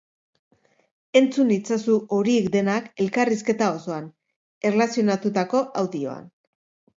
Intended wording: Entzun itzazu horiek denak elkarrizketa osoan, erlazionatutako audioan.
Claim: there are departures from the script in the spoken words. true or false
false